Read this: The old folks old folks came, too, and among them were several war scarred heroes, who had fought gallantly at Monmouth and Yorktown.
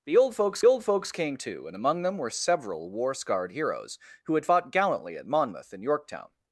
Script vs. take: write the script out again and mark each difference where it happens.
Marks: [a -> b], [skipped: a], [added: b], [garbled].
The old folks old folks came, too, and among them were several war scarred heroes, who had fought gallantly at Monmouth and Yorktown.